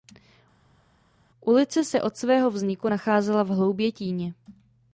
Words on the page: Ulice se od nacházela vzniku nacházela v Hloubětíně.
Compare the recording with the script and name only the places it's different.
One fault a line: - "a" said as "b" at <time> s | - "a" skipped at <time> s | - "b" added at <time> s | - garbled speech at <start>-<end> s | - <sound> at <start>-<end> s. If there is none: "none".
- "nacházela" said as "svého" at 2.2 s